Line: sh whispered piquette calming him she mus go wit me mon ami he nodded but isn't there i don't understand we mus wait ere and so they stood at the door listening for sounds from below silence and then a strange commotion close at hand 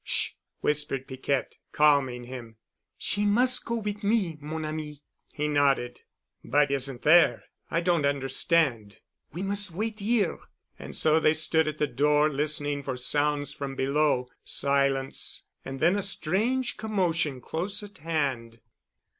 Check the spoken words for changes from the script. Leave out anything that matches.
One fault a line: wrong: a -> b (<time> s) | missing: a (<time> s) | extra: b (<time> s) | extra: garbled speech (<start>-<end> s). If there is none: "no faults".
no faults